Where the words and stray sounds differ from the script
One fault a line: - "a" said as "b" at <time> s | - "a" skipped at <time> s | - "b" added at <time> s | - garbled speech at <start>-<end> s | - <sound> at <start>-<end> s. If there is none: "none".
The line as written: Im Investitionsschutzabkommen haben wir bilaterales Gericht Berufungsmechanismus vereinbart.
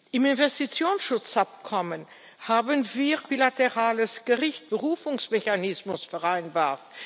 none